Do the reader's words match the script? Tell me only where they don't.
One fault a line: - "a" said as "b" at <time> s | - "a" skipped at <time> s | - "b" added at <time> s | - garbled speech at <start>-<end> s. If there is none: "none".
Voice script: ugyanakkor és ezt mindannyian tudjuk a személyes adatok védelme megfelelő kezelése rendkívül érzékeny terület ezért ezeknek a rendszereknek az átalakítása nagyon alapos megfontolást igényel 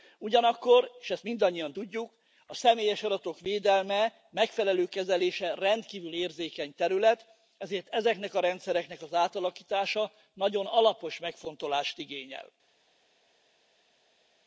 none